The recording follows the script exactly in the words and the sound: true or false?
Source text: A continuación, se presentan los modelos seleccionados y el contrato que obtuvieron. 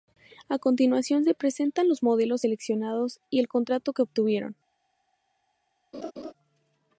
false